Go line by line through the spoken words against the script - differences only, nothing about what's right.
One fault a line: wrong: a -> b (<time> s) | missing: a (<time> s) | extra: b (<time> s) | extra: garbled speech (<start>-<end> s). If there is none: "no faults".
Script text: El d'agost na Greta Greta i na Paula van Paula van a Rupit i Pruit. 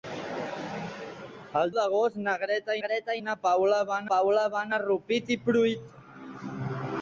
no faults